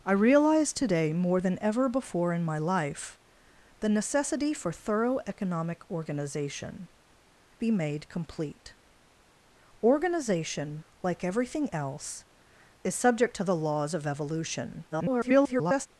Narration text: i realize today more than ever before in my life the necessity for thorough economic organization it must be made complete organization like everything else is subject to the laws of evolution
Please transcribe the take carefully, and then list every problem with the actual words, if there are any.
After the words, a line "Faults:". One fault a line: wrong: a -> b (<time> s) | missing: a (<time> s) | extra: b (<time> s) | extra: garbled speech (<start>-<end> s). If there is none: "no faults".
i realize today more than ever before in my life the necessity for thorough economic organization be made complete organization like everything else is subject to the laws of evolution [garbled]
Faults:
missing: it must (6.9 s)
extra: garbled speech (14.9-15.9 s)